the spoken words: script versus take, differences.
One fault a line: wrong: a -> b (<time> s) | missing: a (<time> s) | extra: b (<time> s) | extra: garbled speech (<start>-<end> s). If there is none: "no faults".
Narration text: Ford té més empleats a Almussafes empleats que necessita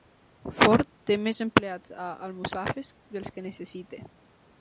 wrong: empleats -> dels (3.2 s)